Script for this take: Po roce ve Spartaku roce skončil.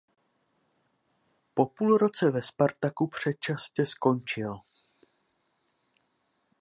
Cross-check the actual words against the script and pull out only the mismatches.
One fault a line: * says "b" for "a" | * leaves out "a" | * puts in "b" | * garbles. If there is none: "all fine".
* puts in "půl"
* says "předčasně" for "roce"